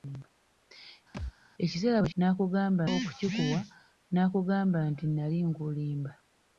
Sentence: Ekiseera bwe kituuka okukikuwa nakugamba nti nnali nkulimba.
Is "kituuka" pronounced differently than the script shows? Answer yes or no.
yes